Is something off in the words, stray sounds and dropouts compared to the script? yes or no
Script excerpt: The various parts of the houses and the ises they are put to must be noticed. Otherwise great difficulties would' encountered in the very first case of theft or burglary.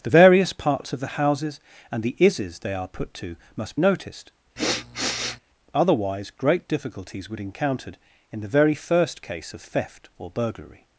yes